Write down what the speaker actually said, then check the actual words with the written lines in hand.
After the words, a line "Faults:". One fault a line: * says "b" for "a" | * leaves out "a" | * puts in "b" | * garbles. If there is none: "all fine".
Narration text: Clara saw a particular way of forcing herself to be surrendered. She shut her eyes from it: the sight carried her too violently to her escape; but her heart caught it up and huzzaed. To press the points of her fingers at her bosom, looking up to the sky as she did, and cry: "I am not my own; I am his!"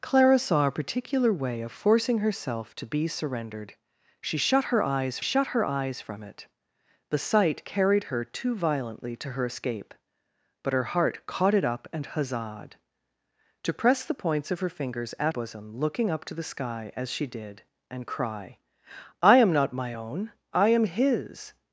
Clara saw a particular way of forcing herself to be surrendered. She shut her eyes shut her eyes from it: the sight carried her too violently to her escape; but her heart caught it up and huzzaed. To press the points of her fingers at bosom, looking up to the sky as she did, and cry: "I am not my own; I am his!"
Faults:
* puts in "shut her eyes"
* leaves out "her"